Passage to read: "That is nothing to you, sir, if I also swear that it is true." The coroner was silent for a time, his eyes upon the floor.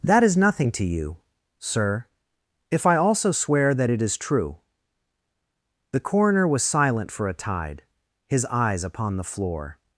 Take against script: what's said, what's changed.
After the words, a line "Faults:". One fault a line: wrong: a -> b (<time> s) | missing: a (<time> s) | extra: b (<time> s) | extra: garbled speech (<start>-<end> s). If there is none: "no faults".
"That is nothing to you, sir, if I also swear that it is true." The coroner was silent for a tide, his eyes upon the floor.
Faults:
wrong: time -> tide (7.3 s)